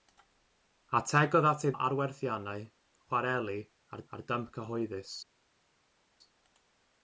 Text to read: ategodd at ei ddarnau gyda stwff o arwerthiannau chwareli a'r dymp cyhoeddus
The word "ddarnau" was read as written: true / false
false